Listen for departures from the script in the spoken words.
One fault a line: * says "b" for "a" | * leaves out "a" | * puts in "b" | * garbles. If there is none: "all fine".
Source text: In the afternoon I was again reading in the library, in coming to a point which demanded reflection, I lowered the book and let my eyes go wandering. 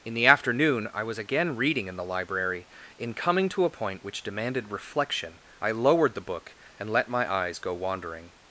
all fine